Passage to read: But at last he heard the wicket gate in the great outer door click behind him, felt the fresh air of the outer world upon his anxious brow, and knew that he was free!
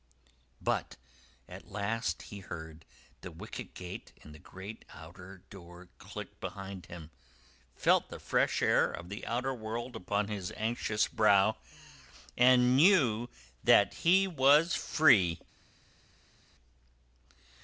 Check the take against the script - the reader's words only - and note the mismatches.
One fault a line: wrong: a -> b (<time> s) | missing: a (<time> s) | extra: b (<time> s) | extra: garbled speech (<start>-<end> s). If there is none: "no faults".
no faults